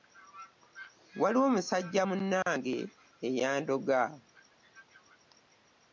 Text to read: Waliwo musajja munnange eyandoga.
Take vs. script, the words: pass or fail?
pass